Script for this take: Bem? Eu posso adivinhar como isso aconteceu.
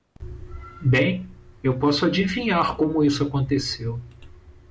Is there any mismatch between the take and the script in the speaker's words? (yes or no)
no